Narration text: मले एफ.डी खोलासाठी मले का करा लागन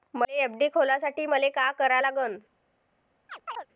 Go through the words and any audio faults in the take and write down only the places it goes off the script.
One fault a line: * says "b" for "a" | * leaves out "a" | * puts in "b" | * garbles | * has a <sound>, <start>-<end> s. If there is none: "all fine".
* has a chirp, 3.3-3.7 s